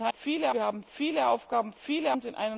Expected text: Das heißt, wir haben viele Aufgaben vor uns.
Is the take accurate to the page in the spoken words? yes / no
no